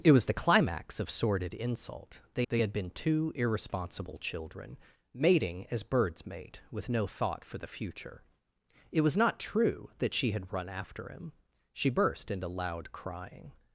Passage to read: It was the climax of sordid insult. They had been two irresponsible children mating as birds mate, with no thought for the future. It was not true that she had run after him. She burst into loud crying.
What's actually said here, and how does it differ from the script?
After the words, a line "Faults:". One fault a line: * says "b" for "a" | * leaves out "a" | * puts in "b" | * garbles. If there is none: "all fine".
It was the climax of sordid insult. They they had been two irresponsible children mating as birds mate, with no thought for the future. It was not true that she had run after him. She burst into loud crying.
Faults:
* puts in "they"